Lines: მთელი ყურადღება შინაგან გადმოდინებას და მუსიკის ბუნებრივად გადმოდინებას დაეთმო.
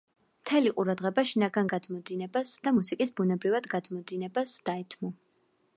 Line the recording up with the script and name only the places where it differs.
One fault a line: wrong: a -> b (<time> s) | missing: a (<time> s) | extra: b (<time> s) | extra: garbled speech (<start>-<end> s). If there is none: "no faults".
no faults